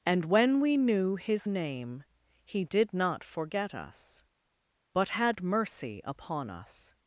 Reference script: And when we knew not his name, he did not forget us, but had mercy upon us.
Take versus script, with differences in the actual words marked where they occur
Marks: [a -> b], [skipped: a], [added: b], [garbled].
And when we knew [skipped: not] his name, he did not forget us, but had mercy upon us.